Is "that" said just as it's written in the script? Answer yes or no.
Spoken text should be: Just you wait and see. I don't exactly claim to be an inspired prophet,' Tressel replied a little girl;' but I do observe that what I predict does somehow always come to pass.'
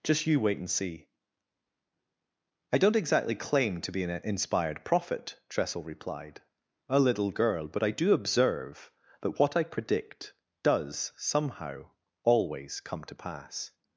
yes